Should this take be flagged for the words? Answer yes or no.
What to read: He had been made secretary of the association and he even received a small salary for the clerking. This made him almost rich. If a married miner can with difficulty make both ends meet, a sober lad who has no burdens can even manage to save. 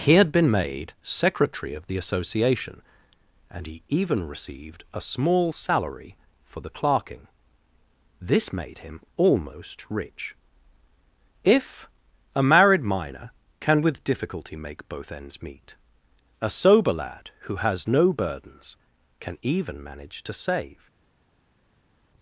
no